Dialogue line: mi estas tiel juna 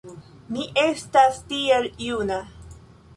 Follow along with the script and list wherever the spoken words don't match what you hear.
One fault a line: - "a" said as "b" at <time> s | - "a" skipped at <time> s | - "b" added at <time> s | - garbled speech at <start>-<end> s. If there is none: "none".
none